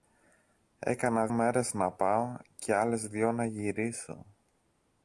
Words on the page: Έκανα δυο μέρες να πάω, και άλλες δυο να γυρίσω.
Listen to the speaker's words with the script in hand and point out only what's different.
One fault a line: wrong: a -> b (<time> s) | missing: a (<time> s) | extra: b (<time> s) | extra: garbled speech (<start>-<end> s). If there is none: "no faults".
missing: δυο (1.3 s)